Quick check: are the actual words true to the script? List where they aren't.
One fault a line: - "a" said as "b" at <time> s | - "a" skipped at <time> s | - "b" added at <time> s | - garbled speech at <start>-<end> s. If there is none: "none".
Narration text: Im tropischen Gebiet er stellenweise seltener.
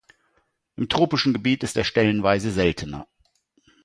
- "ist" added at 1.6 s